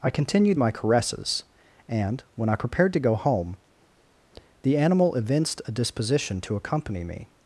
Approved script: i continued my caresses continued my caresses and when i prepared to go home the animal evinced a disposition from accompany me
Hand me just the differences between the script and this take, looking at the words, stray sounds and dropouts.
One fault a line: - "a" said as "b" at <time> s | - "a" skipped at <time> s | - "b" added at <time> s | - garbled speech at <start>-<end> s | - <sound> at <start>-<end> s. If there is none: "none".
- "continued my caresses" skipped at 1.4 s
- "from" said as "to" at 6.4 s